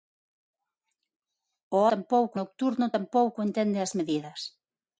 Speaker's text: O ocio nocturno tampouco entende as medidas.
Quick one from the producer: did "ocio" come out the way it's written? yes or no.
no